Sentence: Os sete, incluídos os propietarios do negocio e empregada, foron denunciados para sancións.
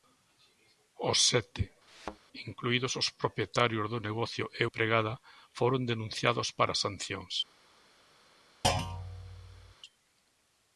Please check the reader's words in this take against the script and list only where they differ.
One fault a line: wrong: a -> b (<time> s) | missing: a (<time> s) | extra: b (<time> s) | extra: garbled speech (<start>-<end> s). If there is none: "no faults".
no faults